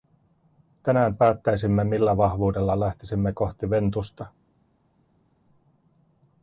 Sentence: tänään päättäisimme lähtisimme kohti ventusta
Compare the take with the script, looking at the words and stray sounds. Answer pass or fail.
fail